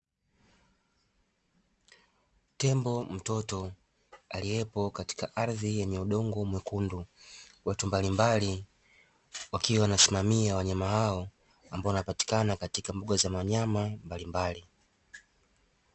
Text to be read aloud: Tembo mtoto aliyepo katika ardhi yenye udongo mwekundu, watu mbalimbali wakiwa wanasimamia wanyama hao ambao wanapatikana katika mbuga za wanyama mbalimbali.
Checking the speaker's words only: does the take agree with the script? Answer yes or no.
yes